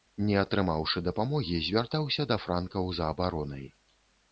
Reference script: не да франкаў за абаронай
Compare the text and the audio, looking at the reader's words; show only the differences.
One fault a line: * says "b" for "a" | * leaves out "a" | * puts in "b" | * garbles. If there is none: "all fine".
* puts in "атрымаўшы дапамогі звяртаўся"